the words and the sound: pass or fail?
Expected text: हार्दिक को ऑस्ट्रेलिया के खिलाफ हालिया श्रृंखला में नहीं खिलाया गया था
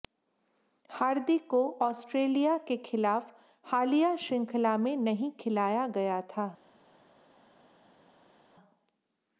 pass